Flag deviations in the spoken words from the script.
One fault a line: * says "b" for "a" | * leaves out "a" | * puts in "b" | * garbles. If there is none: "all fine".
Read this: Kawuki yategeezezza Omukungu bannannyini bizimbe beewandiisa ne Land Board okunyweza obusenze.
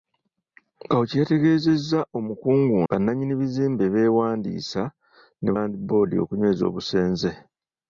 all fine